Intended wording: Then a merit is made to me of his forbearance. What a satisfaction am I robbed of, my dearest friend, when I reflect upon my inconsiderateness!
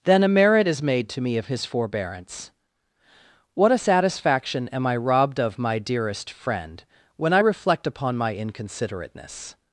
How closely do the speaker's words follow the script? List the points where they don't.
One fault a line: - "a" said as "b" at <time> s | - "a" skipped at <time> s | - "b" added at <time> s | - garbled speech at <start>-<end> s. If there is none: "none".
none